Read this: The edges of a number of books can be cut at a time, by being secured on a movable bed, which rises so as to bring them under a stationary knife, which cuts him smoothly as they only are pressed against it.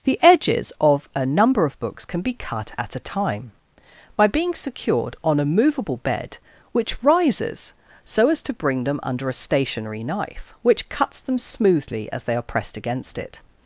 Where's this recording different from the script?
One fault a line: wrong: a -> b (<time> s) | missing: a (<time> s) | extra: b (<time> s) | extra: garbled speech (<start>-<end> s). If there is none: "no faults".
wrong: him -> them (11.2 s)
missing: only (12.3 s)